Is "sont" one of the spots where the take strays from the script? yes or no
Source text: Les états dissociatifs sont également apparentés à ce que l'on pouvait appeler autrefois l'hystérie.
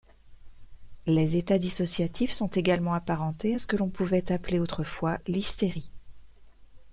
no